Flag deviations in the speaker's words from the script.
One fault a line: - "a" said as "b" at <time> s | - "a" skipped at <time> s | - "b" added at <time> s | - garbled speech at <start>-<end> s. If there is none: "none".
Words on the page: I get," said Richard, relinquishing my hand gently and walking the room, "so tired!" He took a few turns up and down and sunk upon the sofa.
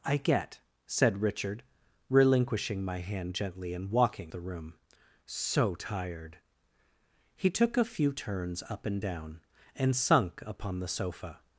none